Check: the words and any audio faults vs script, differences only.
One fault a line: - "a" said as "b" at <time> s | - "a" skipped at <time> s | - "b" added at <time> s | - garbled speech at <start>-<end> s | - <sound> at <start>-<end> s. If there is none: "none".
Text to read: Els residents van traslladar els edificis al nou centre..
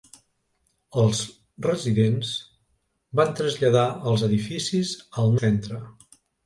- "nou" skipped at 5.3 s